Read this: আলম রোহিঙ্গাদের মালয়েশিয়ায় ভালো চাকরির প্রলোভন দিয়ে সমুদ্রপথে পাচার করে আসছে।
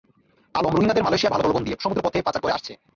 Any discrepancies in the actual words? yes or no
yes